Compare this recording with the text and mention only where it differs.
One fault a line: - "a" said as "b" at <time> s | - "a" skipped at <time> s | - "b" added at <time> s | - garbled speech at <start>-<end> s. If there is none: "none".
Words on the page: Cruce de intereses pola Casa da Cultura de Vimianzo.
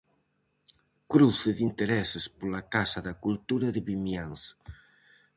none